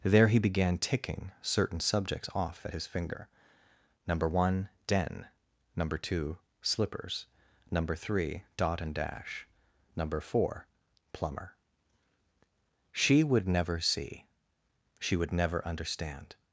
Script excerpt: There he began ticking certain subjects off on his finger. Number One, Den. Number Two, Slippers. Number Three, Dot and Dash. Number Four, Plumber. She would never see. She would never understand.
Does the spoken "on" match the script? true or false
false